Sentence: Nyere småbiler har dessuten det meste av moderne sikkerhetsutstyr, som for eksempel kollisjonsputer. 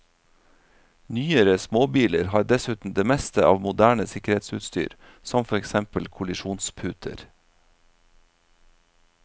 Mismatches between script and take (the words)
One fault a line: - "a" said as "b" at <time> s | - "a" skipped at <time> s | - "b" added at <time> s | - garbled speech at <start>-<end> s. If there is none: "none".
none